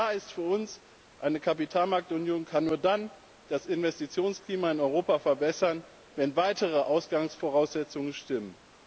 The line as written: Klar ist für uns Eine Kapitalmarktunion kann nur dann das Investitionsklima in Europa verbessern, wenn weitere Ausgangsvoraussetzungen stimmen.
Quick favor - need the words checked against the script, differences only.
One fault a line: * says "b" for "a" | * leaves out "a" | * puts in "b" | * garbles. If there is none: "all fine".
all fine